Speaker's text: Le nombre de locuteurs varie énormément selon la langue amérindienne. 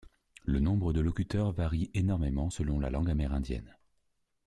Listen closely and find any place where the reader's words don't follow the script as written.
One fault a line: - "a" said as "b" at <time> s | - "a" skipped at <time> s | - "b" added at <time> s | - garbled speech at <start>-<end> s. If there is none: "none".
none